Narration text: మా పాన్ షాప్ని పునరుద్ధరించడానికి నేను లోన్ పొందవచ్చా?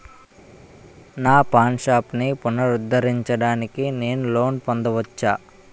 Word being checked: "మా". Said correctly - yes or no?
no